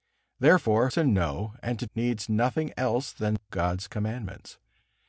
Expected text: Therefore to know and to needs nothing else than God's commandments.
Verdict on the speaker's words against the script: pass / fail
pass